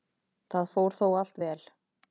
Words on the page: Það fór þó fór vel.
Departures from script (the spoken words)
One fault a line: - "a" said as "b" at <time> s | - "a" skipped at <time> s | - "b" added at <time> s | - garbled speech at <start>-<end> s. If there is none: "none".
- "fór" said as "allt" at 1.2 s